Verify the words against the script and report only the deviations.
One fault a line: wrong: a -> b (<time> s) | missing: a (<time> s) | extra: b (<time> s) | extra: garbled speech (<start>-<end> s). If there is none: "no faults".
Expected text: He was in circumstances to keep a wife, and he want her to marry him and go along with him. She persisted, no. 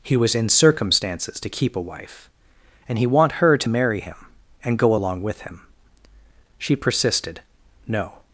no faults